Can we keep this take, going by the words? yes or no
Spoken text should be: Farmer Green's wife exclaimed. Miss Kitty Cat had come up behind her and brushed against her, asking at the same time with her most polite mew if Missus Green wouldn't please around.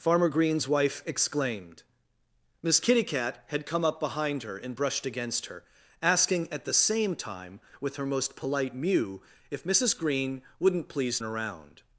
yes